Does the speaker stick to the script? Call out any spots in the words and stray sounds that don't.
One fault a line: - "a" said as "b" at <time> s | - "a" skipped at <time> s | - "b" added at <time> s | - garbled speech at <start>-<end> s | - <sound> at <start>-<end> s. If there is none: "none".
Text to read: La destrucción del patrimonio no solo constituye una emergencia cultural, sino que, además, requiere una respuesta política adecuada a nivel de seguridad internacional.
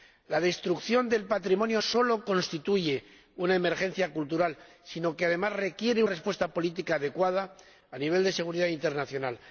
- "no" skipped at 1.8 s
- "una" skipped at 6.0 s